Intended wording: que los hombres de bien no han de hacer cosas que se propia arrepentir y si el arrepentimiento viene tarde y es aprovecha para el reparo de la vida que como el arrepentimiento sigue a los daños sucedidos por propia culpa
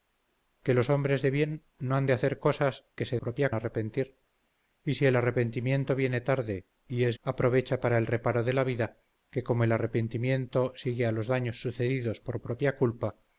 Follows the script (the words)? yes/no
yes